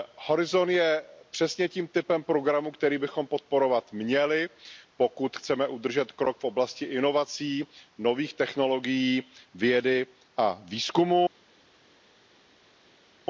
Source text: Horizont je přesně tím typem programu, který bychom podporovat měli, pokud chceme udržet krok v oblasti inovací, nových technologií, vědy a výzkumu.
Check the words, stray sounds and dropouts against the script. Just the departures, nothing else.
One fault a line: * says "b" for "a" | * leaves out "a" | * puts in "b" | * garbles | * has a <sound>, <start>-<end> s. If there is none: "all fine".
all fine